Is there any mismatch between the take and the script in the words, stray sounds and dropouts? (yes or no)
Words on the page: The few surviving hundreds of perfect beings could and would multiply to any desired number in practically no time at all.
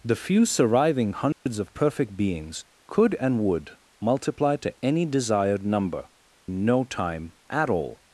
yes